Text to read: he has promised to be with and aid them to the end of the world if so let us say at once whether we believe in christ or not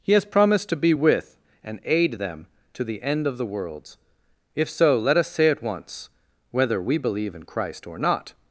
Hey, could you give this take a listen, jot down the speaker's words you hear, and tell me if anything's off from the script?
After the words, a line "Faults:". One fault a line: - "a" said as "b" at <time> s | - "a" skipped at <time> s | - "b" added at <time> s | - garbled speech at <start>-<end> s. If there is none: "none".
he has promised to be with and aid them to the end of the worlds if so let us say at once whether we believe in christ or not
Faults:
- "world" said as "worlds" at 3.4 s